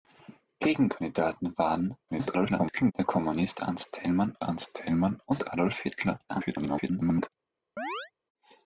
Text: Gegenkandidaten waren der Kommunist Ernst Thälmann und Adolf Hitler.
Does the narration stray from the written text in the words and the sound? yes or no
yes